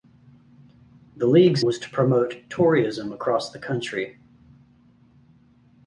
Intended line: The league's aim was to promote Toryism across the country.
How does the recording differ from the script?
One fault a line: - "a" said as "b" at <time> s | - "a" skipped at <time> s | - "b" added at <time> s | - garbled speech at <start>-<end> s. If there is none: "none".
- "aim" skipped at 1.6 s